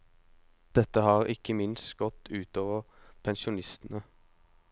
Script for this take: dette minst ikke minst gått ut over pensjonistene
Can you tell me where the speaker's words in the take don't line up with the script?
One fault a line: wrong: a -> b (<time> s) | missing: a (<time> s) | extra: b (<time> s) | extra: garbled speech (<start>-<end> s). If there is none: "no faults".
wrong: minst -> har (1.1 s)